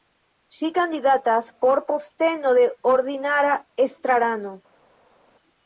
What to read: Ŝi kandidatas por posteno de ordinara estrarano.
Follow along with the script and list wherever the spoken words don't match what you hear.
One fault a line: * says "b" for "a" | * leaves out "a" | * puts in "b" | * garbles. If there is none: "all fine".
all fine